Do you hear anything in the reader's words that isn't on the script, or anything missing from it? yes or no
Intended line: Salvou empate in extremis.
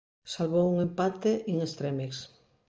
yes